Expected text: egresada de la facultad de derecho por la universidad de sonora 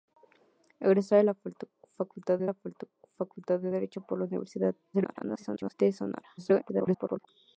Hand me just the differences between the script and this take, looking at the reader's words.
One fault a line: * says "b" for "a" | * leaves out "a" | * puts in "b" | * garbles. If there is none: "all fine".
* puts in "la facultad de"
* garbles
* garbles